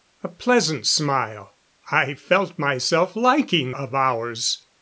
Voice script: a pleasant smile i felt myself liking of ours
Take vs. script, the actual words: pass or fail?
pass